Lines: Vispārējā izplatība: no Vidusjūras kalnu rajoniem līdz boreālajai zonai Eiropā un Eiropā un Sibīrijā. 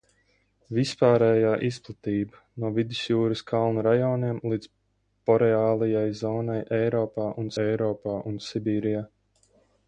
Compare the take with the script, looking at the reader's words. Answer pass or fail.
pass